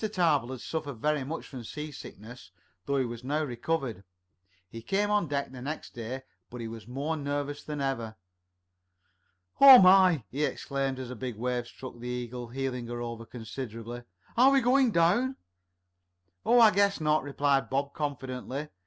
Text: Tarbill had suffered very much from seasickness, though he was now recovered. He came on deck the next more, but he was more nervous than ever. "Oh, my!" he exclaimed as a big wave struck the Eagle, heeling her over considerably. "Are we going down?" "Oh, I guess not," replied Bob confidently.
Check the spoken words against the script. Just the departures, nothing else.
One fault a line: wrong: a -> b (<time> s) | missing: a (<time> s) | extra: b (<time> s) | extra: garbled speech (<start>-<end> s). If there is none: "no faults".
wrong: more -> day (5.9 s)